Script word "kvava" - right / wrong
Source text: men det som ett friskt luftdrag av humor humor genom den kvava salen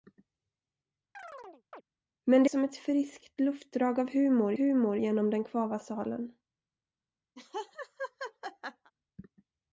right